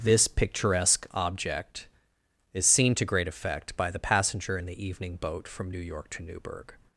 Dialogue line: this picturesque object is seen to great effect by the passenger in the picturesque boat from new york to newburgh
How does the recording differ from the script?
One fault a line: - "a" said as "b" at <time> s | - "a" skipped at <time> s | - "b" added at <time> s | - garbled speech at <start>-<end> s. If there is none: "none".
- "picturesque" said as "evening" at 4.8 s